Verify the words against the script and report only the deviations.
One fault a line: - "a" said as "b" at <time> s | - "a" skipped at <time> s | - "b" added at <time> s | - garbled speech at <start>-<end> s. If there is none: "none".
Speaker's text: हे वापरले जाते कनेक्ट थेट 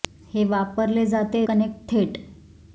none